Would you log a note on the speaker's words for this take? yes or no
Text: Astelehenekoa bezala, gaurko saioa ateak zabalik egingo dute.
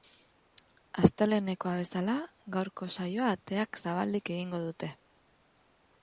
no